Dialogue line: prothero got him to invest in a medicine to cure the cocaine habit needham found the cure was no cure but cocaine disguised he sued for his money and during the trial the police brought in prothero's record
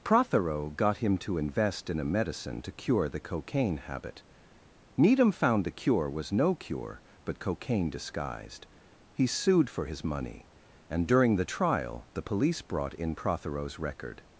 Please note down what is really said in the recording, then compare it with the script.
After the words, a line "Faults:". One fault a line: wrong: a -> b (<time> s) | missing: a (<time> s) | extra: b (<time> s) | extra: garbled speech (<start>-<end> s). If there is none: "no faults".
prothero got him to invest in a medicine to cure the cocaine habit needham found the cure was no cure but cocaine disguised he sued for his money and during the trial the police brought in prothero's record
Faults:
no faults